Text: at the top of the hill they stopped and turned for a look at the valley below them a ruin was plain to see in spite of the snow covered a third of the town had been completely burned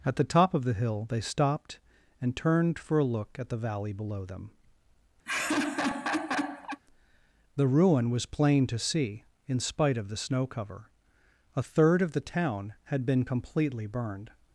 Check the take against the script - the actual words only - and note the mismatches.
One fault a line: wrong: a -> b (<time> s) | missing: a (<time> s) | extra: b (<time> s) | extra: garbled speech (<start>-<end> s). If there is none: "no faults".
wrong: a -> the (7.6 s)
wrong: covered -> cover (10.5 s)